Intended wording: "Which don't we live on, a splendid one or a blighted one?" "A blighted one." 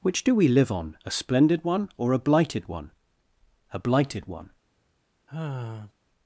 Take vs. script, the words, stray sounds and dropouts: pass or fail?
fail